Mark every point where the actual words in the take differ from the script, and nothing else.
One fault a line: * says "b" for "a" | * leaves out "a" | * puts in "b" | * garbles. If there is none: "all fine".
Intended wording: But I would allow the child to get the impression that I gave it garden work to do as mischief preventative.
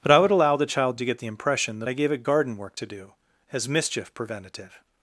all fine